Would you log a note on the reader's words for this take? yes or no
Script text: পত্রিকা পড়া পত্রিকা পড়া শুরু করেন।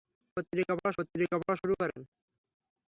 no